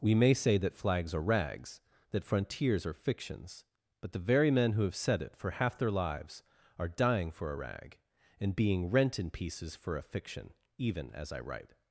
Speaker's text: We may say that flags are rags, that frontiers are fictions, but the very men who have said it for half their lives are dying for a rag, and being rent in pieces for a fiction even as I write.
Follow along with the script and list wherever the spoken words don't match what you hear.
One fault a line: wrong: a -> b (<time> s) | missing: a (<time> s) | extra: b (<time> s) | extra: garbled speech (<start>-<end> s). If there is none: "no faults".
no faults